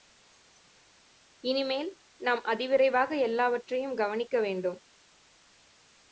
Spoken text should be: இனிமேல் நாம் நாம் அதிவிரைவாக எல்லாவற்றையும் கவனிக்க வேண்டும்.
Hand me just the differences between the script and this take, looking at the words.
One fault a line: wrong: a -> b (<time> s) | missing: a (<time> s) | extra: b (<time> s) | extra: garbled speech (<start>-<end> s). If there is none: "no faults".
missing: நாம் (2.4 s)